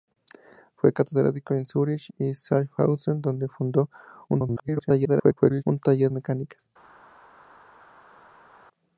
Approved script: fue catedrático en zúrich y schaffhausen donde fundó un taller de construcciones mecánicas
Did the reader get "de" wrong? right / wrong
wrong